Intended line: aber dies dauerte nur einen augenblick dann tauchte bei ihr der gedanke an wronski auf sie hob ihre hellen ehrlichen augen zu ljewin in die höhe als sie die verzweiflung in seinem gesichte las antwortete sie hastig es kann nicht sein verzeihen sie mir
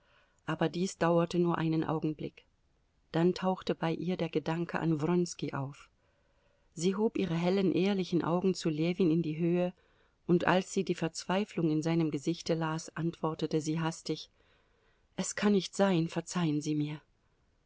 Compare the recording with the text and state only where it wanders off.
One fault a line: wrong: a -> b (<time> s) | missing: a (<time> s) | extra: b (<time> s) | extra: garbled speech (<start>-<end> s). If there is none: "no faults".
extra: und (10.2 s)